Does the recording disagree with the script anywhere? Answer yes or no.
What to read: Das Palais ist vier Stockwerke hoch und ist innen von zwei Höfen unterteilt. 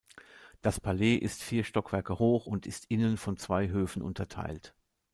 no